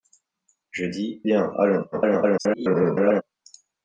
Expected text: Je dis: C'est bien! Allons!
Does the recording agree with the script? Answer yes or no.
no